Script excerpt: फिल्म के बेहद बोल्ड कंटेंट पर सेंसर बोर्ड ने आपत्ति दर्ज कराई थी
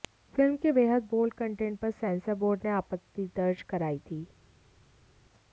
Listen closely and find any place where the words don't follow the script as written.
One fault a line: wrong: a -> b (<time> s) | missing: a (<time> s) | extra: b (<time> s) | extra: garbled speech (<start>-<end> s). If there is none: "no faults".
no faults